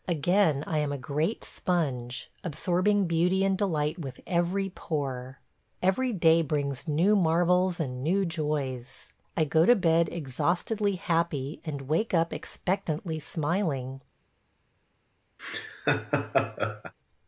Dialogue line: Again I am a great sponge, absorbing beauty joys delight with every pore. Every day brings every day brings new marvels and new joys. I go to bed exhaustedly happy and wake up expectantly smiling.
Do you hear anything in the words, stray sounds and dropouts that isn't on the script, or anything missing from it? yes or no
yes